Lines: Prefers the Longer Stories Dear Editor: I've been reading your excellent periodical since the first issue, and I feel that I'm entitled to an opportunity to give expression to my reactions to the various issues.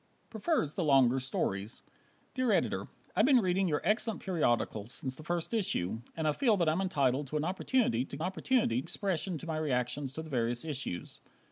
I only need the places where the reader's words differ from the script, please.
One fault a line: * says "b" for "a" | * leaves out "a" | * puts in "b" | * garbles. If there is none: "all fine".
* says "opportunity" for "give"